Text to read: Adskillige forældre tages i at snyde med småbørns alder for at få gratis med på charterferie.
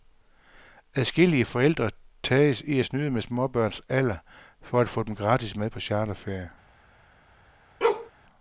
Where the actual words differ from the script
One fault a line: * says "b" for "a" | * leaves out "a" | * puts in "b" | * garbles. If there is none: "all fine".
* puts in "dem"